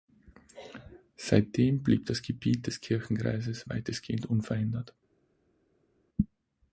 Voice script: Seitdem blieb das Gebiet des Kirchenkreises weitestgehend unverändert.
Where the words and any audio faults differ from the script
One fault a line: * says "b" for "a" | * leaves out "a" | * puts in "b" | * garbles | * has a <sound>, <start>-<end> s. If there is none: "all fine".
all fine